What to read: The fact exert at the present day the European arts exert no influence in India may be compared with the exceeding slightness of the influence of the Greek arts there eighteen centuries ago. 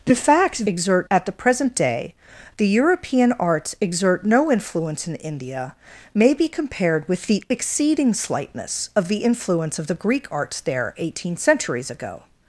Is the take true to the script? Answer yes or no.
yes